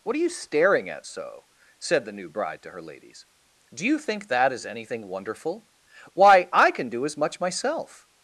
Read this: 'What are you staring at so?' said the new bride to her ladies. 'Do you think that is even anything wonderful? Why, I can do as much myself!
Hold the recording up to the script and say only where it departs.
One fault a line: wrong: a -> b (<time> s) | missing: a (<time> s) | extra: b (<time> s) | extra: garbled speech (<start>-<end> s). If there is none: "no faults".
missing: even (4.7 s)